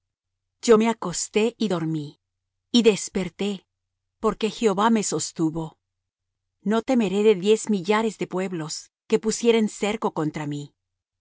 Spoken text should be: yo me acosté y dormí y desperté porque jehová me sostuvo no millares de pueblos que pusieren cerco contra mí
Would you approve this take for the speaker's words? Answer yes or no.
no